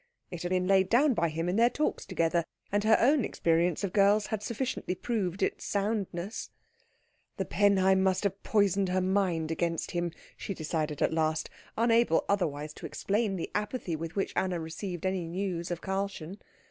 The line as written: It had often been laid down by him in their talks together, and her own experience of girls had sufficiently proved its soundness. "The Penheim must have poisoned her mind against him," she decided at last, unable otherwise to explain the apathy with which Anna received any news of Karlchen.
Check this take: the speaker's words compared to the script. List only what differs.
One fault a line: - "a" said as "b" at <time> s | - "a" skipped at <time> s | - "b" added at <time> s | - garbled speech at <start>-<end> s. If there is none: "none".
- "often" skipped at 0.5 s